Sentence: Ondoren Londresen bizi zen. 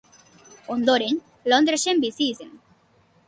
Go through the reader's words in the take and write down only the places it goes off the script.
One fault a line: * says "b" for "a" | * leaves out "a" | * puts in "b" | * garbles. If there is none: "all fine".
all fine